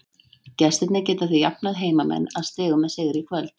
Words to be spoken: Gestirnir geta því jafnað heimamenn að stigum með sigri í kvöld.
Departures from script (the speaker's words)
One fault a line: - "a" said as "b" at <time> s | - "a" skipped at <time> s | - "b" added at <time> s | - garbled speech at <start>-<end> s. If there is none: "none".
none